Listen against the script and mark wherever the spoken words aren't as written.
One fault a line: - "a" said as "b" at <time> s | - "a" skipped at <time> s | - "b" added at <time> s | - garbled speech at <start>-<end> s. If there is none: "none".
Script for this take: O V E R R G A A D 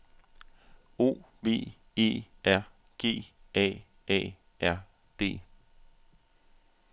- "R" skipped at 2.6 s
- "R" added at 4.6 s